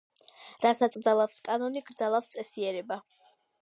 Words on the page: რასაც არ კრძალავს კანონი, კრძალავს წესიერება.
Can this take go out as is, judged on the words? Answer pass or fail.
fail